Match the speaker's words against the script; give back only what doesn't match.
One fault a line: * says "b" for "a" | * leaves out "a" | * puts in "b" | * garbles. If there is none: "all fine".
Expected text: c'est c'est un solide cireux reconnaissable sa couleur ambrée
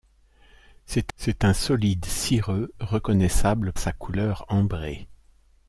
all fine